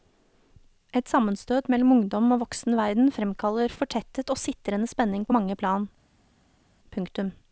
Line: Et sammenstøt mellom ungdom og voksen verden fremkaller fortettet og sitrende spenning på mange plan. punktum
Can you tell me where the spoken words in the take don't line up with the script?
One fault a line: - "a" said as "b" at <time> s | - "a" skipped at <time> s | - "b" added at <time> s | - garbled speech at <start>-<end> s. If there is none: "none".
none